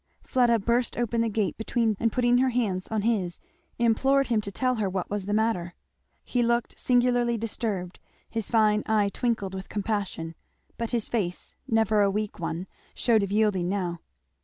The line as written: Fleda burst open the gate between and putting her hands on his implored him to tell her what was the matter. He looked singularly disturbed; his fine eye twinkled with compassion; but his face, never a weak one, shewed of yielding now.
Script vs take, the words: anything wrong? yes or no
no